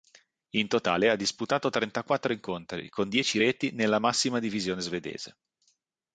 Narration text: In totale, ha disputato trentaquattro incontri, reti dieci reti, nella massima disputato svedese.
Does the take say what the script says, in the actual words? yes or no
no